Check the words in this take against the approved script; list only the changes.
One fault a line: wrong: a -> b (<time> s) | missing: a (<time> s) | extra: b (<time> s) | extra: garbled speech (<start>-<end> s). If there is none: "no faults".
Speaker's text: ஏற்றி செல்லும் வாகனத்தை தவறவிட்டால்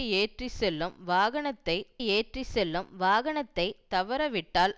extra: ஏற்றி செல்லும் வாகனத்தை (2.1 s)